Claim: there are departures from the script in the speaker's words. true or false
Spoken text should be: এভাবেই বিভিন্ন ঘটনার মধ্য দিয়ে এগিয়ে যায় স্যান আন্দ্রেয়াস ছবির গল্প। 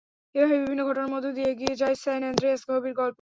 false